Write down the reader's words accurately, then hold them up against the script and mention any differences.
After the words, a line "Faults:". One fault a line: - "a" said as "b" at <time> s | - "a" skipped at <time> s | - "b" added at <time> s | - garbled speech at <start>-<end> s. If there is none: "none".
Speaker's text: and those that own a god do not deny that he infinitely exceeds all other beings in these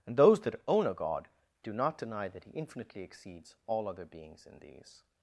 and those that own a god do not deny that he infinitely exceeds all other beings in these
Faults:
none